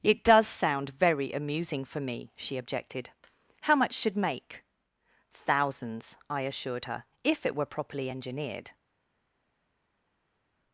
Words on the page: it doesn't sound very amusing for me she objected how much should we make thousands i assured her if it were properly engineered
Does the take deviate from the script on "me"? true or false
false